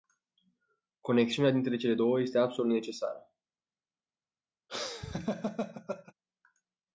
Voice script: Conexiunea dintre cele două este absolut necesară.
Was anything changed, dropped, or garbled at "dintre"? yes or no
no